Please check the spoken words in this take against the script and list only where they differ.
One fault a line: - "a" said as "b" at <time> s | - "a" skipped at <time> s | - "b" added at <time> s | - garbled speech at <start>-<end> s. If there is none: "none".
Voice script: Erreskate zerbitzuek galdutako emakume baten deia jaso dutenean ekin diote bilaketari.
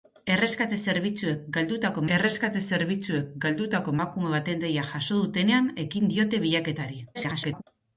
- "erreskate zerbitzuek galdutako" added at 2.2 s
- garbled speech at 7.1-7.6 s